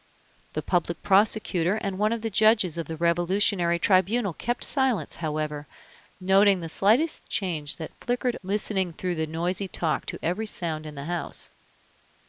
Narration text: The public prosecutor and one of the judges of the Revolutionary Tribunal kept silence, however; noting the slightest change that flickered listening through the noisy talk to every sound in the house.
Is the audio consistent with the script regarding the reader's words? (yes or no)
yes